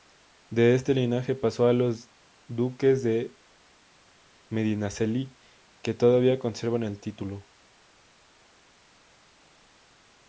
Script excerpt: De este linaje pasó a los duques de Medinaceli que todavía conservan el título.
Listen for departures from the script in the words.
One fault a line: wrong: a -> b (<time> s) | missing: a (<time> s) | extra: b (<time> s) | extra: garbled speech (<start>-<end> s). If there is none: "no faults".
no faults